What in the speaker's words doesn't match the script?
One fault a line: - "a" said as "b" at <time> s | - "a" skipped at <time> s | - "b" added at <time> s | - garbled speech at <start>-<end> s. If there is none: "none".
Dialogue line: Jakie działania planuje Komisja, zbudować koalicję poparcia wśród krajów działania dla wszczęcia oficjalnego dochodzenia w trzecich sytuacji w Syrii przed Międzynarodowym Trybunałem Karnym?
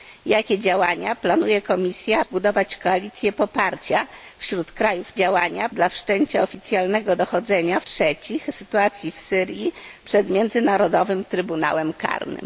none